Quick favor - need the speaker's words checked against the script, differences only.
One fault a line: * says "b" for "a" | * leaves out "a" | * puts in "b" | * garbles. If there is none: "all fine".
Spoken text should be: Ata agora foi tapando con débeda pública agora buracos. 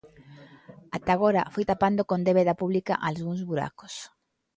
* says "algúns" for "agora"